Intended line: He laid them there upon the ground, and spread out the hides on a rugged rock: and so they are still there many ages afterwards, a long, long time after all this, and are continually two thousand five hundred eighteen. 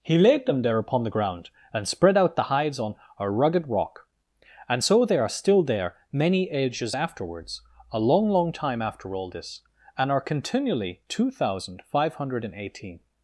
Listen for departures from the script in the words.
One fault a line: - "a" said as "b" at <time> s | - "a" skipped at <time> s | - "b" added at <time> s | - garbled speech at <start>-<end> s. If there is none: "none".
none